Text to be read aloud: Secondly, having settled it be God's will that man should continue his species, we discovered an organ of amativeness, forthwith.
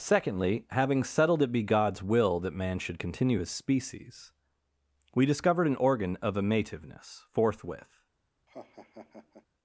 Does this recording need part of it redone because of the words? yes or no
no